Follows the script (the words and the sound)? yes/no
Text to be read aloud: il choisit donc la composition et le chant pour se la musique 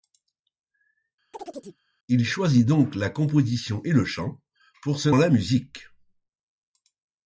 no